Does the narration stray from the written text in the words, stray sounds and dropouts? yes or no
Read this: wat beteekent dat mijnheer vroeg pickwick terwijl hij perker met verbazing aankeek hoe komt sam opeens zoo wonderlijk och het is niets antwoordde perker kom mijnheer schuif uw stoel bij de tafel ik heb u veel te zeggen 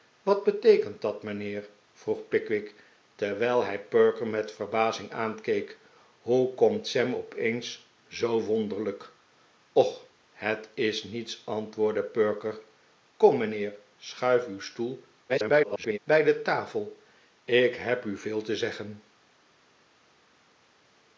yes